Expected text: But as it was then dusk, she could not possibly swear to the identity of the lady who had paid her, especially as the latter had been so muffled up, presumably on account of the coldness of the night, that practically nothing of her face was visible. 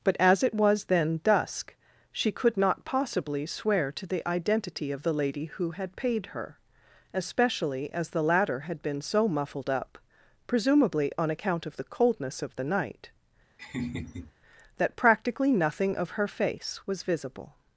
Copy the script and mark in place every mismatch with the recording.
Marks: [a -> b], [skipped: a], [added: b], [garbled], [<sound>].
But as it was then dusk, she could not possibly swear to the identity of the lady who had paid her, especially as the latter had been so muffled up, presumably on account of the coldness of the night, [laugh] that practically nothing of her face was visible.